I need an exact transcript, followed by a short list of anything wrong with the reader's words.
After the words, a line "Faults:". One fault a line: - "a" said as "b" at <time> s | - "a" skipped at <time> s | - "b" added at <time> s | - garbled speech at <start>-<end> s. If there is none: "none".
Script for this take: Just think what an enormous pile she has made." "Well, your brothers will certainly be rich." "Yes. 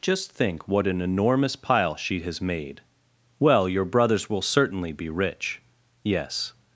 Just think what an enormous pile she has made." "Well, your brothers will certainly be rich." "Yes.
Faults:
none